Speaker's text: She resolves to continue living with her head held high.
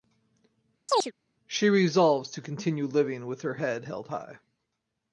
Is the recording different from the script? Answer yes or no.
no